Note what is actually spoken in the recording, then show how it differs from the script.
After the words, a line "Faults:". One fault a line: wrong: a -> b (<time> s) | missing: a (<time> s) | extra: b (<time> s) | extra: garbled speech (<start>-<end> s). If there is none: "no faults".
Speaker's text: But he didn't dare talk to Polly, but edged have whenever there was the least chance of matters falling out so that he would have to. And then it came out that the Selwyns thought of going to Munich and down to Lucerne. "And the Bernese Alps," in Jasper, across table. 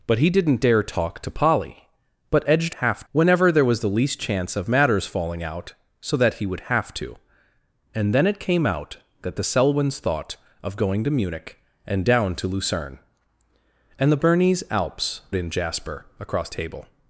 But he didn't dare talk to Polly, but edged have whenever there was the least chance of matters falling out so that he would have to. And then it came out that the Selwyns thought of going to Munich and down to Lucerne. "And the Bernese Alps," in Jasper, across table.
Faults:
no faults